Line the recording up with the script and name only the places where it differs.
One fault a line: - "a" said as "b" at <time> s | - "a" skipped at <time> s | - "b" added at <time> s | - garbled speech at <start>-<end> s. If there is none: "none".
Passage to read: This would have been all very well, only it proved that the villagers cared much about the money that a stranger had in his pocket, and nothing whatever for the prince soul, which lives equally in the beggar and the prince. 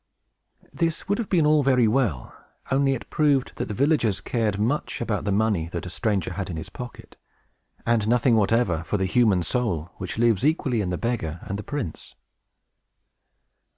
- "prince" said as "human" at 9.1 s